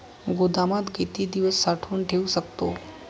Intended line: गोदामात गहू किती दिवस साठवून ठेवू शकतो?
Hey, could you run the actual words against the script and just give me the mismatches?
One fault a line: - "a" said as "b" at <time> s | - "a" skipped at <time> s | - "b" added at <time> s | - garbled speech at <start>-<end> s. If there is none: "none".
- "गहू" skipped at 0.9 s